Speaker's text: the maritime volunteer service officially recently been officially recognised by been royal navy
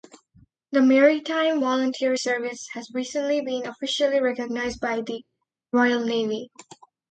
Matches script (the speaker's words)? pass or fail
fail